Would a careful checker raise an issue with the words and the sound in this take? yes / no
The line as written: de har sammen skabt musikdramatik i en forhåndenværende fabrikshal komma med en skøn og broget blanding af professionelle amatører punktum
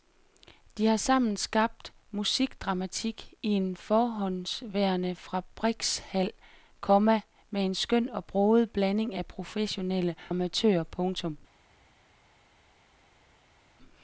no